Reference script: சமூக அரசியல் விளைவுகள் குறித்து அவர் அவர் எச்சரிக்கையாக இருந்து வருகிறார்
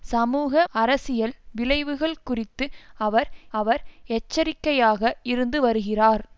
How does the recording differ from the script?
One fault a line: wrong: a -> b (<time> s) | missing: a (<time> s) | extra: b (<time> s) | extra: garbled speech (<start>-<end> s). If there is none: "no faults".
no faults